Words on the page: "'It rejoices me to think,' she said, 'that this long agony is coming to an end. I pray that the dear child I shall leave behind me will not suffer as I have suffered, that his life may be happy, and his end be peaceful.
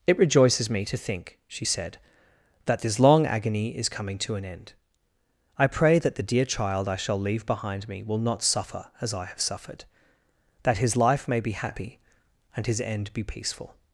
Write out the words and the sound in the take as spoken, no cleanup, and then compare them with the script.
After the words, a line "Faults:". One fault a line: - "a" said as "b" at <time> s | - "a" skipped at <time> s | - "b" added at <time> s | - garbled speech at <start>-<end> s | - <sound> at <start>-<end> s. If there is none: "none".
"'It rejoices me to think,' she said, 'that this long agony is coming to an end. I pray that the dear child I shall leave behind me will not suffer as I have suffered, that his life may be happy, and his end be peaceful.
Faults:
none